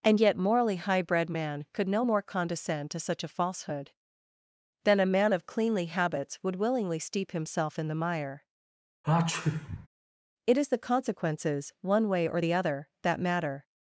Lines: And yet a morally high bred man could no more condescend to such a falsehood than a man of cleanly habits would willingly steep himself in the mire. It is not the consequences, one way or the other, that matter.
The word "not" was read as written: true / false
false